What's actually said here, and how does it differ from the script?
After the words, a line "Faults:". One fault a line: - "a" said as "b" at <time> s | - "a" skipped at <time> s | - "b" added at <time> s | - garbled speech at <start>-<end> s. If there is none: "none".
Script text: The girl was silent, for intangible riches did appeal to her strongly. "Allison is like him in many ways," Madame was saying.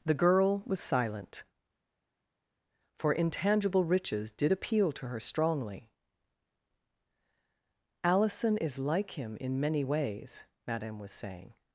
The girl was silent, for intangible riches did appeal to her strongly. "Allison is like him in many ways," Madame was saying.
Faults:
none